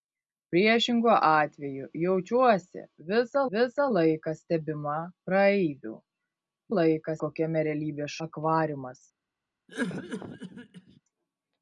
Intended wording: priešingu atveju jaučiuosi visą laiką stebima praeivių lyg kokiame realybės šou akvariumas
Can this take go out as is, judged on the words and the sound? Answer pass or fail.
fail